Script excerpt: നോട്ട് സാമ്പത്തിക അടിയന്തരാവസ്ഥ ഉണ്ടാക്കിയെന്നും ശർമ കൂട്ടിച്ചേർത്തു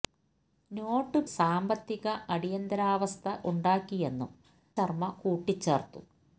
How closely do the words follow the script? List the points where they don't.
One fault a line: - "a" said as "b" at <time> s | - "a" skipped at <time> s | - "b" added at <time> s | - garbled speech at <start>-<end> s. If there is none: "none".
none